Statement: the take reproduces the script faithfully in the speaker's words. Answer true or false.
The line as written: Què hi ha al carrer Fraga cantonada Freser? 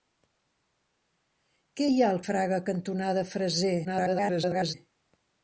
false